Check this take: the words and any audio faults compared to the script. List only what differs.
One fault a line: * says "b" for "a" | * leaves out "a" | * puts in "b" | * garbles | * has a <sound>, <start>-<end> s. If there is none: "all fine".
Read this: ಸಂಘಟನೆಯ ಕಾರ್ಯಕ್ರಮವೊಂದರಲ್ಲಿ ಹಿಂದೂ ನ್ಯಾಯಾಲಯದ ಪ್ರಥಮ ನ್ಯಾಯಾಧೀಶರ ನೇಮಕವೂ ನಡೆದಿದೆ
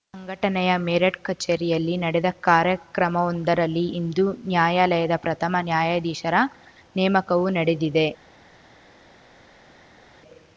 * puts in "ಮೇರಠ್ ಕಚೇರಿಯಲ್ಲಿ ನಡೆದ"